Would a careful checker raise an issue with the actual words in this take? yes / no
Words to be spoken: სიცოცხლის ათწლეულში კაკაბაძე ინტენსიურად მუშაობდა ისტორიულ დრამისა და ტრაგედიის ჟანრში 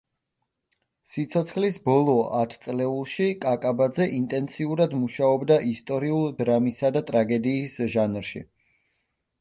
yes